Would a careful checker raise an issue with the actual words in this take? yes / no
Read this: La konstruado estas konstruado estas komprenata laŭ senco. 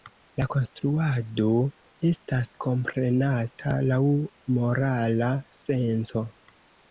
yes